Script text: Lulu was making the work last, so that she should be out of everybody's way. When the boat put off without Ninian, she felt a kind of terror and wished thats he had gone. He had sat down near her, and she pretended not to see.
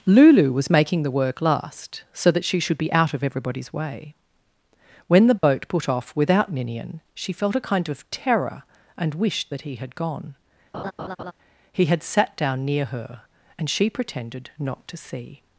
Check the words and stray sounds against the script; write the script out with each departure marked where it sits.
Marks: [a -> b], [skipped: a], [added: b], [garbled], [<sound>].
Lulu was making the work last, so that she should be out of everybody's way. When the boat [dropout] put off without Ninian, she felt a kind of terror and wished [thats -> that] he had gone. [laugh] He had sat down near her, and she pretended not to see.